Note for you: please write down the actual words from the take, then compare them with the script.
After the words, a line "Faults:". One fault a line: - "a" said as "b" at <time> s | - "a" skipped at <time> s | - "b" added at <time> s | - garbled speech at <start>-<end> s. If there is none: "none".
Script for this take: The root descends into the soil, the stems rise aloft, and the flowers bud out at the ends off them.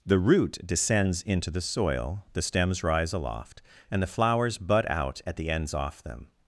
The root descends into the soil, the stems rise aloft, and the flowers bud out at the ends off them.
Faults:
none